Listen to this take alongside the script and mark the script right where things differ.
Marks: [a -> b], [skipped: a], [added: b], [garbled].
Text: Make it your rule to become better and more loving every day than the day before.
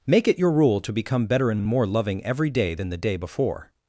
Make it your rule to become better and [added: and] more loving every day than the day before.